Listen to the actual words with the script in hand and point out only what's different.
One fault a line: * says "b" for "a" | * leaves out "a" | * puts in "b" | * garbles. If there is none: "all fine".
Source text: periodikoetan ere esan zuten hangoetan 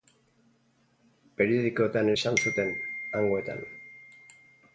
* leaves out "ere"